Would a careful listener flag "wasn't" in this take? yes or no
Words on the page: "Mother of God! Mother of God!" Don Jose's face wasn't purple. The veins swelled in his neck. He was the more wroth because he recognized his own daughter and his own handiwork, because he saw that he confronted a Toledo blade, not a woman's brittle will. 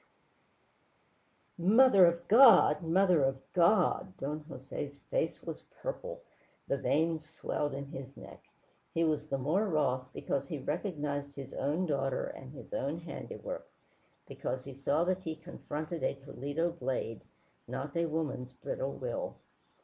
yes